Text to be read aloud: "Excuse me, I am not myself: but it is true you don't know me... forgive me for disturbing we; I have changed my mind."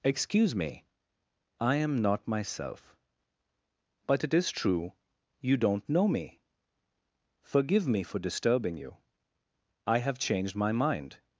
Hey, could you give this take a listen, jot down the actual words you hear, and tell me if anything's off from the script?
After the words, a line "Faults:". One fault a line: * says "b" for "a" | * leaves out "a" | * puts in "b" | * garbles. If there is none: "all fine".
"Excuse me, I am not myself: but it is true you don't know me... forgive me for disturbing you; I have changed my mind."
Faults:
* says "you" for "we"